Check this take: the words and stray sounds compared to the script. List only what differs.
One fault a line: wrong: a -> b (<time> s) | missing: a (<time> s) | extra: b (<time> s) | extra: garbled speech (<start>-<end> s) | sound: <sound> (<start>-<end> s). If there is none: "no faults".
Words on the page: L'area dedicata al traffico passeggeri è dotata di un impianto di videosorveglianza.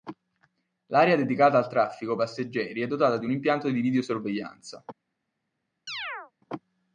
sound: chirp (5.9-6.3 s)